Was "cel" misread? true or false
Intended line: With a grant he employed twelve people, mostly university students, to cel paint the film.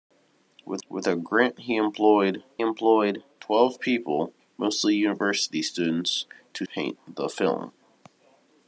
true